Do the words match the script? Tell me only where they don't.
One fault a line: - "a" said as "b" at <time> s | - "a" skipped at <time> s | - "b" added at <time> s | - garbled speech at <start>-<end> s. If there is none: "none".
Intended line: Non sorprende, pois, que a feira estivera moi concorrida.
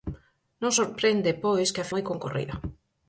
- "feira estivera" skipped at 1.9 s